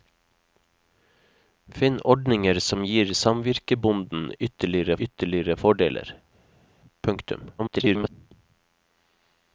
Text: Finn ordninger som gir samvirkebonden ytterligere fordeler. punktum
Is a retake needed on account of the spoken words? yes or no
yes